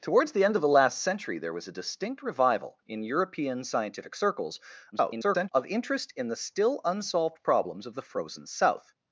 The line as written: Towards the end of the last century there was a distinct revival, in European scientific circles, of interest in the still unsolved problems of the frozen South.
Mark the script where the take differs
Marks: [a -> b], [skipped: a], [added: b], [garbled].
Towards the end of the last century there was a distinct revival, in European scientific circles, [garbled] of interest in the still unsolved problems of the frozen South.